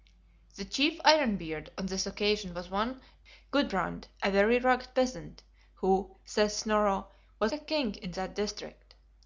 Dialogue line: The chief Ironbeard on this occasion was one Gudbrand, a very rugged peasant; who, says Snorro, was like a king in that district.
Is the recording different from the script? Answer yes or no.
yes